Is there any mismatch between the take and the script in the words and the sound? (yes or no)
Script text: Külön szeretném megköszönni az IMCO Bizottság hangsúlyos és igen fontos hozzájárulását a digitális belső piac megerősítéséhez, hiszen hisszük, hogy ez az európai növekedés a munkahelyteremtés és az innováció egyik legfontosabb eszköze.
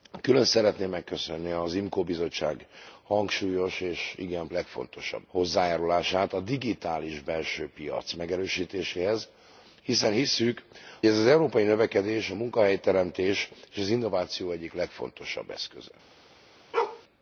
yes